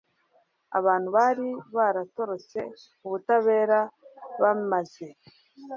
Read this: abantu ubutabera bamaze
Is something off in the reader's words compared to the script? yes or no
yes